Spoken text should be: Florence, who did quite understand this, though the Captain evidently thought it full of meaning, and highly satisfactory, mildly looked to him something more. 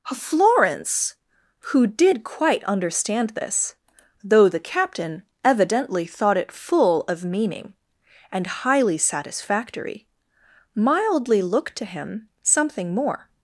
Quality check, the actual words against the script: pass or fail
pass